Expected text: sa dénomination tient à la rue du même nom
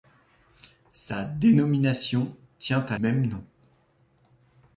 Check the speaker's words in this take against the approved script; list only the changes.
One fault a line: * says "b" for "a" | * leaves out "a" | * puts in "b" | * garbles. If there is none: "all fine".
* leaves out "la rue du"